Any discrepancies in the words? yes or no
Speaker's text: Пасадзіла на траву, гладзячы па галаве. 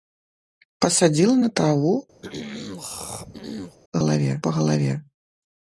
yes